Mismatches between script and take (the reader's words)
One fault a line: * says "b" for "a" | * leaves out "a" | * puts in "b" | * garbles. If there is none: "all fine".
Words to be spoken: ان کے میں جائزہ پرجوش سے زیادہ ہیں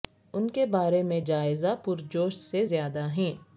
* puts in "بارے"